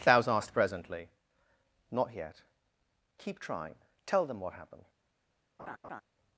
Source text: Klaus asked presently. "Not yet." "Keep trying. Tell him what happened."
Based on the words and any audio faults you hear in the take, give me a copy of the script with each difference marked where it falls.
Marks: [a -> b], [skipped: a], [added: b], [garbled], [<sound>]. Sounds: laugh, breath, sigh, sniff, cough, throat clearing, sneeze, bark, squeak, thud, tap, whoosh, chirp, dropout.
Klaus asked presently. "Not yet." "Keep trying. Tell [him -> them] what happened." [laugh]